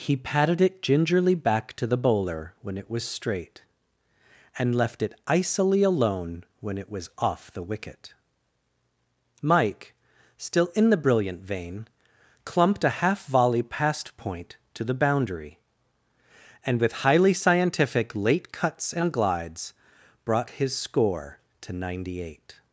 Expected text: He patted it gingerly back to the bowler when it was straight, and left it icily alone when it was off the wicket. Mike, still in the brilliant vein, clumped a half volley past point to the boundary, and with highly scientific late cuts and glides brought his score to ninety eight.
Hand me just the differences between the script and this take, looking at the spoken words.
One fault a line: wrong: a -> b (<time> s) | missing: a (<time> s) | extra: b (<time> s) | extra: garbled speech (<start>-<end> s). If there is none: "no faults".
no faults